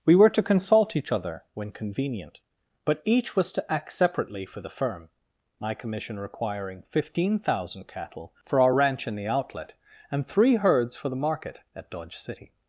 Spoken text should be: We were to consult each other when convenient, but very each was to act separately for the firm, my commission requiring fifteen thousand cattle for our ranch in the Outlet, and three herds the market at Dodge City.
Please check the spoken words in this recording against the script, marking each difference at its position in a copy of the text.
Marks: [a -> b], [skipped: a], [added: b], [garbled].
We were to consult each other when convenient, but [skipped: very] each was to act separately for the firm, my commission requiring fifteen thousand cattle for our ranch in the Outlet, and three herds [added: for] the market at Dodge City.